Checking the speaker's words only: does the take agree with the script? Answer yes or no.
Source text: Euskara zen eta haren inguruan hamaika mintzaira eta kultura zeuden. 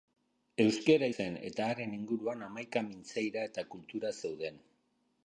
yes